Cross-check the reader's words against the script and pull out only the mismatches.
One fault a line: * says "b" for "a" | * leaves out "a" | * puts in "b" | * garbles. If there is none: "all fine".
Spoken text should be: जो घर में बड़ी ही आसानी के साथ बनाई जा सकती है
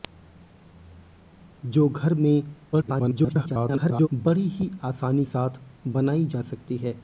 * garbles
* leaves out "के"